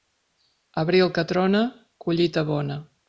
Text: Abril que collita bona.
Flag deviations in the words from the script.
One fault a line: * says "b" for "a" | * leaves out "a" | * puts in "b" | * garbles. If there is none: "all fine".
* puts in "trona"